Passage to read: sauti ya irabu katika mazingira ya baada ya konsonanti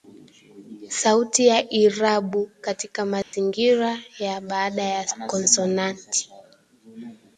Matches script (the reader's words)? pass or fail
pass